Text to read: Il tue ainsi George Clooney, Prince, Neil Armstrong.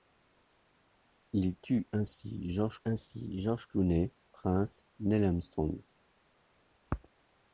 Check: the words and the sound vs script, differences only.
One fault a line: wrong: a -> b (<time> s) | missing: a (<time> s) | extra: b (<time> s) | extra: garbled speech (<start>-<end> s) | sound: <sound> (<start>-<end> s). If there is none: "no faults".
extra: ainsi George (2.8 s)